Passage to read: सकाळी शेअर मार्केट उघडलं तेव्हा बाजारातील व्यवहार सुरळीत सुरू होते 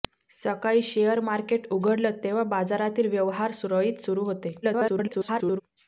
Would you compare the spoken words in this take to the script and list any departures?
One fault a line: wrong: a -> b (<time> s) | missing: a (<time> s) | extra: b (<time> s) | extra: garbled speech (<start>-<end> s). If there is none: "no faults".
extra: garbled speech (4.6-5.6 s)